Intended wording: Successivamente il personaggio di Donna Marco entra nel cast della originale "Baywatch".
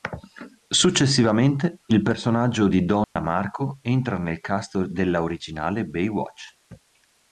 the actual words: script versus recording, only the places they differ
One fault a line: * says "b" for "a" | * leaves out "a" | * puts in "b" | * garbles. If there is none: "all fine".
all fine